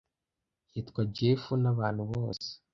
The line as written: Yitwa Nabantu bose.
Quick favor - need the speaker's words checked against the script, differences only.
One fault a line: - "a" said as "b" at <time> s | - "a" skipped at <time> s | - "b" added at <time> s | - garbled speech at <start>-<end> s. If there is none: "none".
- "Jeff" added at 1.1 s